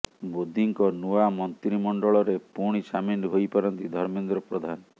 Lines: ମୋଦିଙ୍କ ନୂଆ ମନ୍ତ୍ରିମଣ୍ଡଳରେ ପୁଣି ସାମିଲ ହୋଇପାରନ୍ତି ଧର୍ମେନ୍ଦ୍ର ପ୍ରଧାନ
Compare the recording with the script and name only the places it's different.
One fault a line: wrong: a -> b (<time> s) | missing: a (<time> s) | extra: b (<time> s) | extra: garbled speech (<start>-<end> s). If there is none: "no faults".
no faults